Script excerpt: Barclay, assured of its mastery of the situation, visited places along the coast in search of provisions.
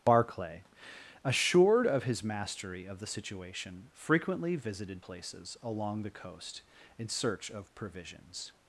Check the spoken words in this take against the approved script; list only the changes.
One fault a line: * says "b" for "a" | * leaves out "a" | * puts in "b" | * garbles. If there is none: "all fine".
* says "his" for "its"
* puts in "frequently"